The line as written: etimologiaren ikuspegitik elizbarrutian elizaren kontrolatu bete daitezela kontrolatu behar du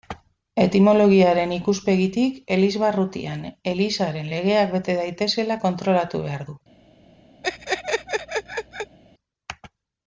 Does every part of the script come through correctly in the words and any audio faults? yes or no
no